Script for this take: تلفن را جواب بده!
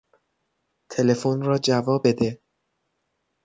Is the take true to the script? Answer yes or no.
yes